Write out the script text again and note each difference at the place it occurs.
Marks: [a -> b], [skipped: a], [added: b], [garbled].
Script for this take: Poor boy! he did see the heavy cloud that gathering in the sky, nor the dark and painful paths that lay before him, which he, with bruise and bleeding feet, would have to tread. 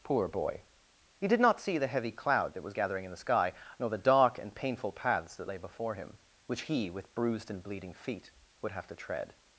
Poor boy! he did [added: not] see the heavy cloud that [added: was] gathering in the sky, nor the dark and painful paths that lay before him, which he, with [bruise -> bruised] and bleeding feet, would have to tread.